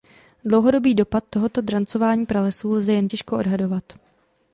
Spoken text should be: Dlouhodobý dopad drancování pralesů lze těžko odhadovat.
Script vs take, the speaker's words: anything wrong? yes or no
yes